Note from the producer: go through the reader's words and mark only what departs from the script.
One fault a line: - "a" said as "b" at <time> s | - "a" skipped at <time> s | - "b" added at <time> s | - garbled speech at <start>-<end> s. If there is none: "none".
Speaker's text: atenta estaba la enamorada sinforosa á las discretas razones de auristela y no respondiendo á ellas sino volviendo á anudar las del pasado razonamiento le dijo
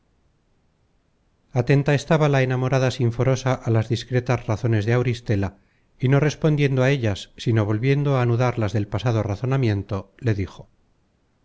none